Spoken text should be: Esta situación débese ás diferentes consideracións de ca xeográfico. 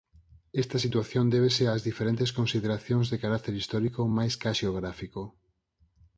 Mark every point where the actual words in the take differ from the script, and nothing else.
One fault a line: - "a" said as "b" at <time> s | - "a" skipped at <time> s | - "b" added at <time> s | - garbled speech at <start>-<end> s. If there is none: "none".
- "carácter histórico máis" added at 3.2 s